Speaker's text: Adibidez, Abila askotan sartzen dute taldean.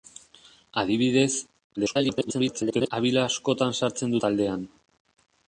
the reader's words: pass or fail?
fail